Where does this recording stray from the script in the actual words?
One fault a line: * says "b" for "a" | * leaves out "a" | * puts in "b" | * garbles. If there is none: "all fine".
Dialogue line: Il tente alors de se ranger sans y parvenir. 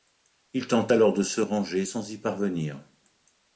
all fine